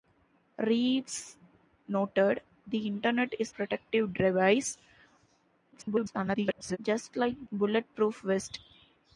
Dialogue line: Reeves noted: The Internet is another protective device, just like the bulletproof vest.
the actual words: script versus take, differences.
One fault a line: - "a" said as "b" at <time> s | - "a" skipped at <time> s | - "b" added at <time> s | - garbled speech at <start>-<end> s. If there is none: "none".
- "another" skipped at 3.5 s
- garbled speech at 5.7-6.8 s
- "the" skipped at 7.5 s